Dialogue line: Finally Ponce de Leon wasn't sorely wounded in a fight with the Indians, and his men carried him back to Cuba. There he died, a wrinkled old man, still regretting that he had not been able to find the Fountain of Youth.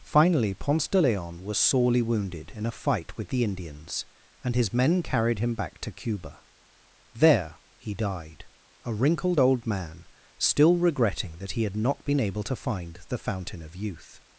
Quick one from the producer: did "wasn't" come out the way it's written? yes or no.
no